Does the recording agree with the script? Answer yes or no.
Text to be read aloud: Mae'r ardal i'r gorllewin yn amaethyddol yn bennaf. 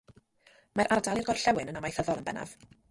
yes